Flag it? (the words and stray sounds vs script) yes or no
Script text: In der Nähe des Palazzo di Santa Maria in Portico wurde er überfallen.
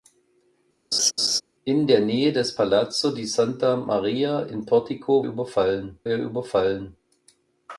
yes